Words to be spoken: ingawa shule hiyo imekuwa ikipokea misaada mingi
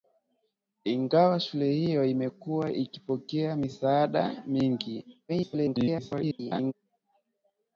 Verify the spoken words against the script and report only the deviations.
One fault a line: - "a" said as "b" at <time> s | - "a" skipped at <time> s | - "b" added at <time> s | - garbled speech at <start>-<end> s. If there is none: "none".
- garbled speech at 5.3-6.7 s